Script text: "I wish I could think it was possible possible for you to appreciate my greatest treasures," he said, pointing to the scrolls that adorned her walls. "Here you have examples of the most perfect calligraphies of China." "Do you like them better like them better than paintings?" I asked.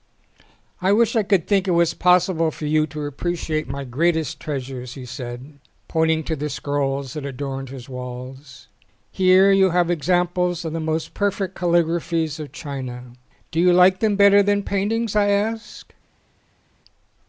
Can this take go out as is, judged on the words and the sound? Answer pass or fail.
fail